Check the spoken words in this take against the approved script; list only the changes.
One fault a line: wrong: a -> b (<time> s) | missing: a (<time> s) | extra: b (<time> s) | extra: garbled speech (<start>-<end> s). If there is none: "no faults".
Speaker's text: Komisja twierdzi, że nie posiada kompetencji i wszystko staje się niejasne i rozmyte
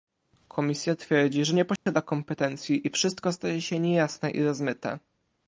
no faults